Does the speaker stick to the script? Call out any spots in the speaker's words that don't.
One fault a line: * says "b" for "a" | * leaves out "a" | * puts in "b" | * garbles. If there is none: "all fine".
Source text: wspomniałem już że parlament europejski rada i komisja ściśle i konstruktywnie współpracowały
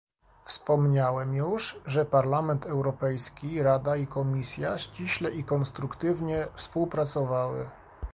all fine